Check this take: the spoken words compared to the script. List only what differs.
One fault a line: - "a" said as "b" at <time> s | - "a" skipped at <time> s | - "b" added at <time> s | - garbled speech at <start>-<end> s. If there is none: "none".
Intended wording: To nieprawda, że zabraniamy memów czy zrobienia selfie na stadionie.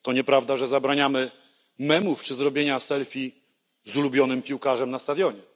- "z ulubionym piłkarzem" added at 3.9 s